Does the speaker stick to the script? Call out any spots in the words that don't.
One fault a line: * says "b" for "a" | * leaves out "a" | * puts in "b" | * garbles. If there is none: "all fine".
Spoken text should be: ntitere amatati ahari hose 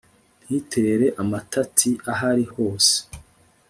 all fine